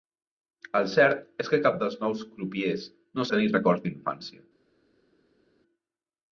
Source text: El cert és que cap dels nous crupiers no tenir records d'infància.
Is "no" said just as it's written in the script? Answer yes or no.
yes